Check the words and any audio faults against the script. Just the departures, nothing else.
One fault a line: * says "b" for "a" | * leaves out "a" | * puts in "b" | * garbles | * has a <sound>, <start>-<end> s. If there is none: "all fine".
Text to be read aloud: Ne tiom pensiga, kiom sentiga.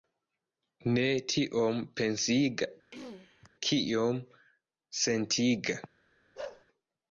* has a throat clearing, 2.9-3.5 s
* has a bark, 6.4-6.7 s